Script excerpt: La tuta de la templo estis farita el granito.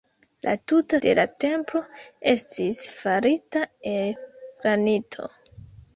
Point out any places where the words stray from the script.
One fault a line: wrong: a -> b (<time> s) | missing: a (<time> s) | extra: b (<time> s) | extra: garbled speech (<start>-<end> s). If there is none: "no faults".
no faults